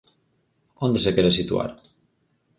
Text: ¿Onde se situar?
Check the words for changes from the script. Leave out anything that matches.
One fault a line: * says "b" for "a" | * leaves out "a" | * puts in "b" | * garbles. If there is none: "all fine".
* puts in "quere"